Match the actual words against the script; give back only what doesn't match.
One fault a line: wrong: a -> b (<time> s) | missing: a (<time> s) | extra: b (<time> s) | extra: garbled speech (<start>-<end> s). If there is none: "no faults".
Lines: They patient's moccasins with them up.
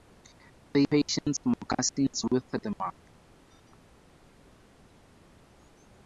no faults